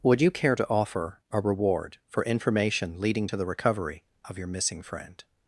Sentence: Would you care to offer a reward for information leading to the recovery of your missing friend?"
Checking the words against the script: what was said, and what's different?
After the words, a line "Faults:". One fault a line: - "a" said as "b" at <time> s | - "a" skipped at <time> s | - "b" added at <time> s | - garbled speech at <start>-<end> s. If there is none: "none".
Would you care to offer a reward for information leading to the recovery of your missing friend?"
Faults:
none